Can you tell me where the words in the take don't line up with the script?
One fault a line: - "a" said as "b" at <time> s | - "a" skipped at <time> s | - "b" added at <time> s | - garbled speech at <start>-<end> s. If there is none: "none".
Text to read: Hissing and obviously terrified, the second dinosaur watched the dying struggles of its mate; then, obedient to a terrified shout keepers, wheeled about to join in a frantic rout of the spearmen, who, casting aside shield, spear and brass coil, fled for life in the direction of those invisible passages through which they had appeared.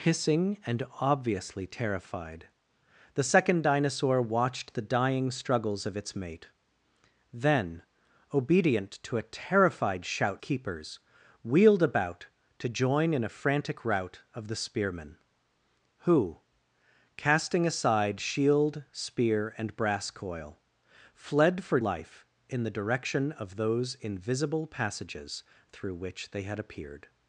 none